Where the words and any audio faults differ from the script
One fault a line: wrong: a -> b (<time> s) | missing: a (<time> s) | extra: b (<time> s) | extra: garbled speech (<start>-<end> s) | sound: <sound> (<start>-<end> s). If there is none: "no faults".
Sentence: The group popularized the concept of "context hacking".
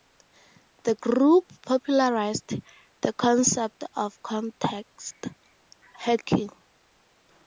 no faults